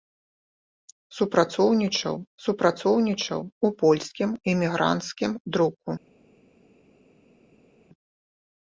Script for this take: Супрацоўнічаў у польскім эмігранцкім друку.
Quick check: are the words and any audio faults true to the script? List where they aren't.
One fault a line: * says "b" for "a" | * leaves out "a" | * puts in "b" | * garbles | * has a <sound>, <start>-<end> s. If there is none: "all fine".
* puts in "супрацоўнічаў"